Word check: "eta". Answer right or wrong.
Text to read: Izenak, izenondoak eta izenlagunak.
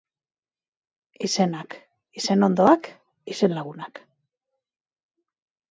wrong